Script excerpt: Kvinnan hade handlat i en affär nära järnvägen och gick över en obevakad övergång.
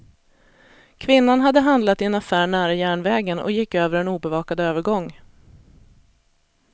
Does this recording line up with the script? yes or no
yes